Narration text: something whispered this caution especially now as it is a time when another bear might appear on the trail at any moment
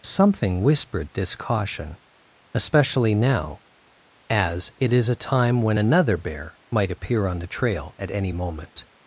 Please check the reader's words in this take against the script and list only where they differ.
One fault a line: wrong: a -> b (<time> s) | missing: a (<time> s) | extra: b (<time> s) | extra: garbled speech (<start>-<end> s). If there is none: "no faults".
no faults